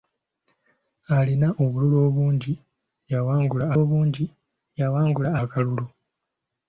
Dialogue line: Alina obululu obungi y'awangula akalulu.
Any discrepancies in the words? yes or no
yes